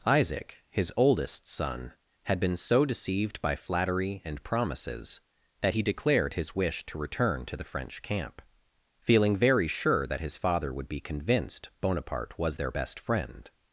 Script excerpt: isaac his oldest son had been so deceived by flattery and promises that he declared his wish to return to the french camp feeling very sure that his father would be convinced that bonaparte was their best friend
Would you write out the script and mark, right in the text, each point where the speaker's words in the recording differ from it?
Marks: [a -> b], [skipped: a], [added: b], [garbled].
isaac his oldest son had been so deceived by flattery and promises that he declared his wish to return to the french camp feeling very sure that his father would be convinced [skipped: that] bonaparte was their best friend